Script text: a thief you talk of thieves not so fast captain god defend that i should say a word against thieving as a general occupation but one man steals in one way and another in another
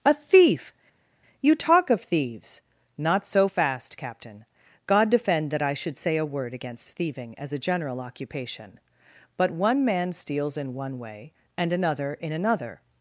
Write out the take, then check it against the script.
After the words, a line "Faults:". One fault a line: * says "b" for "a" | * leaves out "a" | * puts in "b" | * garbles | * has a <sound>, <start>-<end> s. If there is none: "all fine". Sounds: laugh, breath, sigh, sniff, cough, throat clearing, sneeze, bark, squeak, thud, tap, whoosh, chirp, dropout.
a thief you talk of thieves not so fast captain god defend that i should say a word against thieving as a general occupation but one man steals in one way and another in another
Faults:
all fine